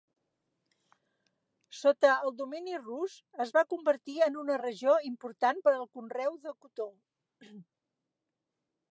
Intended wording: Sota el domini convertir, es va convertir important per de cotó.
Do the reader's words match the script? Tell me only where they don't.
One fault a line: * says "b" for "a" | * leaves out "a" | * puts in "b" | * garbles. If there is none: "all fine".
* says "rus" for "convertir"
* puts in "en una regió"
* puts in "al conreu"